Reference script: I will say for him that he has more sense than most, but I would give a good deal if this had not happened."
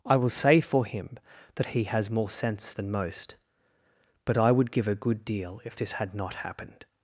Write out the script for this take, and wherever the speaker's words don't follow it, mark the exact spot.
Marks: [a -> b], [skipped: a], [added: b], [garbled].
I will say for him that he has more sense than most, but I would give a good deal if this had not happened."